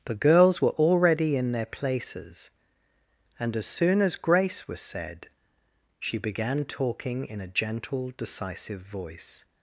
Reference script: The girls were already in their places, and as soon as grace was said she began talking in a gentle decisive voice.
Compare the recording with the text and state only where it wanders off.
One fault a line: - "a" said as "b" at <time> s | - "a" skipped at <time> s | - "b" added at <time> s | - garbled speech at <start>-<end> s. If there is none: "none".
none